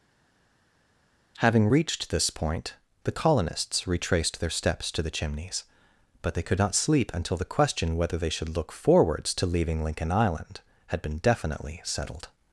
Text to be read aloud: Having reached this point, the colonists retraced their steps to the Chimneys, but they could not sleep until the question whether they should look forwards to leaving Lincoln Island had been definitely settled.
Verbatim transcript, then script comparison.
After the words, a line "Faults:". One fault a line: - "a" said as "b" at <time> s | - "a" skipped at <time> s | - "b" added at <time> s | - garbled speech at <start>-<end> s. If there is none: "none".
Having reached this point, the colonists retraced their steps to the Chimneys, but they could not sleep until the question whether they should look forwards to leaving Lincoln Island had been definitely settled.
Faults:
none